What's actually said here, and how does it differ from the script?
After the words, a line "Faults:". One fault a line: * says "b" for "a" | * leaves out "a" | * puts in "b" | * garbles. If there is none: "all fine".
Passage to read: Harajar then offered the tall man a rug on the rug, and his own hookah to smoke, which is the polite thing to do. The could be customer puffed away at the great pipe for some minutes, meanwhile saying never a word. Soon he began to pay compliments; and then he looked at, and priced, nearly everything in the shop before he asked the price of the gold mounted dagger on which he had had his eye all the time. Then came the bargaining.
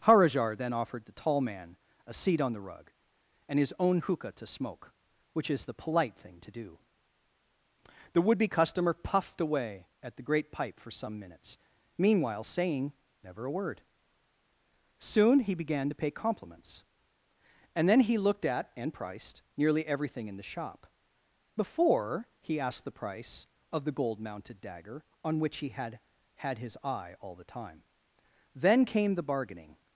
Harajar then offered the tall man a seat on the rug, and his own hookah to smoke, which is the polite thing to do. The would be customer puffed away at the great pipe for some minutes, meanwhile saying never a word. Soon he began to pay compliments; and then he looked at, and priced, nearly everything in the shop before he asked the price of the gold mounted dagger on which he had had his eye all the time. Then came the bargaining.
Faults:
* says "seat" for "rug"
* says "would" for "could"